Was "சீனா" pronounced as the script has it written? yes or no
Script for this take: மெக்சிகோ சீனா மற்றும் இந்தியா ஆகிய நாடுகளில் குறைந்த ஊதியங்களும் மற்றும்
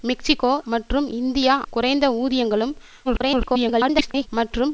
no